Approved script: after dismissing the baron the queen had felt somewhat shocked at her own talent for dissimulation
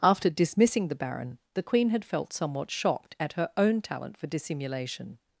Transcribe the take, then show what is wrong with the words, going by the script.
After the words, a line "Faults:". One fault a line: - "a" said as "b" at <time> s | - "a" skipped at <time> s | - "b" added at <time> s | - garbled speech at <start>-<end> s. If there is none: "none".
after dismissing the baron the queen had felt somewhat shocked at her own talent for dissimulation
Faults:
none